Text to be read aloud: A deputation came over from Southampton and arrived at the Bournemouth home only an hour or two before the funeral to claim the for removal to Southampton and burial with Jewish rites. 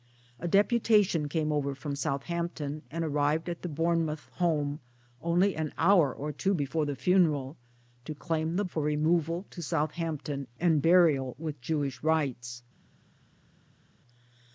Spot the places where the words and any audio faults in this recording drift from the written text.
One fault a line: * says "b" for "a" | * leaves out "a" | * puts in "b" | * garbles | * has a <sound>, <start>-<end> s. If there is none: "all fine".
all fine